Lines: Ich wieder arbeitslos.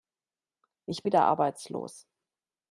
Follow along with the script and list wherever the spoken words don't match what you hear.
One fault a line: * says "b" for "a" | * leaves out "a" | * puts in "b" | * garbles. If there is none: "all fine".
all fine